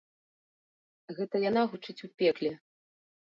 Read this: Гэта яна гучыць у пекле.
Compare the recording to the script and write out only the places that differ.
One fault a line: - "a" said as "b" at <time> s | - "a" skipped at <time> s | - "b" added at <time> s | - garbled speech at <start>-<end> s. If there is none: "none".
none